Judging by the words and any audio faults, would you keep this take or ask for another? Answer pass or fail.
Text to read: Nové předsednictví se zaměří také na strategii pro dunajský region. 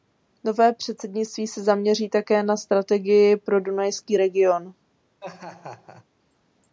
fail